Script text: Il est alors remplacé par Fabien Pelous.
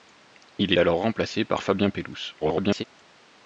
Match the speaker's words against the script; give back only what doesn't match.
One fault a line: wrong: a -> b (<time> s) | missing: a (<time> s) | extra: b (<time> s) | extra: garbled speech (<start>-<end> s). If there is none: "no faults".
missing: est (0.7 s)
extra: garbled speech (2.4-2.8 s)